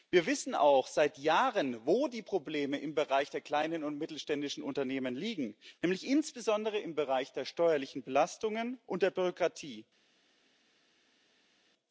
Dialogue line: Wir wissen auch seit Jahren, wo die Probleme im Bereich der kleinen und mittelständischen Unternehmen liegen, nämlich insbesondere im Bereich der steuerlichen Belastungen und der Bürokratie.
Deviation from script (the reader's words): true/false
false